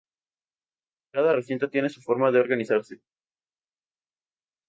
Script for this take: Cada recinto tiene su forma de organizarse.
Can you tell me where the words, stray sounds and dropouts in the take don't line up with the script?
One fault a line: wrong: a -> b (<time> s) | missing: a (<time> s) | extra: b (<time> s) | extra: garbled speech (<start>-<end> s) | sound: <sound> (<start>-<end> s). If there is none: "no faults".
no faults